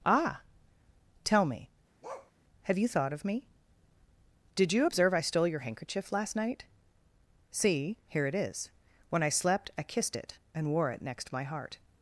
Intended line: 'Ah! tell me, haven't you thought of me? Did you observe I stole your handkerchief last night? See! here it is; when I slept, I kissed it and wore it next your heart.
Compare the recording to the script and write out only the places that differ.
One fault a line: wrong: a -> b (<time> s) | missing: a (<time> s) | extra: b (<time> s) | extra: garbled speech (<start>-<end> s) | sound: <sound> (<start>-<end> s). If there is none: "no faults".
sound: bark (2.0-2.3 s)
wrong: haven't -> have (2.6 s)
wrong: your -> my (11.3 s)